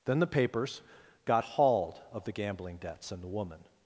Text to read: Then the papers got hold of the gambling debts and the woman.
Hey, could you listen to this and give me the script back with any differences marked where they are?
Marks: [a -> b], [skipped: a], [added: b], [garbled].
Then the papers got [hold -> hauled] of the gambling debts and the woman.